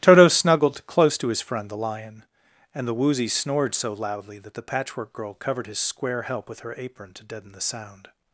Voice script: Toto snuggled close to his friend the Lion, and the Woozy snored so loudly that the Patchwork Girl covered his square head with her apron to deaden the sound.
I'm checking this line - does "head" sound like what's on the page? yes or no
no